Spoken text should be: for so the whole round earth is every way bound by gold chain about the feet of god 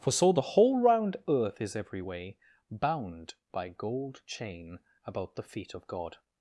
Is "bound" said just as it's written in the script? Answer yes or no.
yes